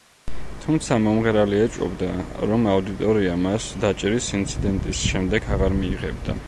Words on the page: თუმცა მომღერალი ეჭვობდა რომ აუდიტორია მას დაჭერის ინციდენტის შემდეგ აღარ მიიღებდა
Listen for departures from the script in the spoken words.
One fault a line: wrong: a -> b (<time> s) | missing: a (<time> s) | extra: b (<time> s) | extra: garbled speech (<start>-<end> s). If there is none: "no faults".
no faults